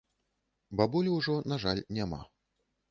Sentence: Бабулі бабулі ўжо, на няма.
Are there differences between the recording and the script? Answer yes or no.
yes